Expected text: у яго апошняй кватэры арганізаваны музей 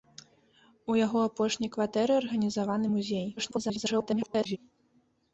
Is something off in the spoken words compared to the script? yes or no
yes